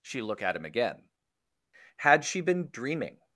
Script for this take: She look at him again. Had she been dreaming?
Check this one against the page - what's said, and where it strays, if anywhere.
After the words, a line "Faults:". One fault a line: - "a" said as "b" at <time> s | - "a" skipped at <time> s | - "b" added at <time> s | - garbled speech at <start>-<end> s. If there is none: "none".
She look at him again. Had she been dreaming?
Faults:
none